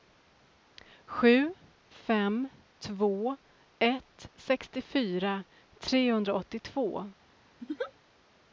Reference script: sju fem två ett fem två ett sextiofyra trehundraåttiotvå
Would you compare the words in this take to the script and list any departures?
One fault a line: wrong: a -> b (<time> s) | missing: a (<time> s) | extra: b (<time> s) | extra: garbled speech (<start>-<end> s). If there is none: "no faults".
missing: fem två ett (4.3 s)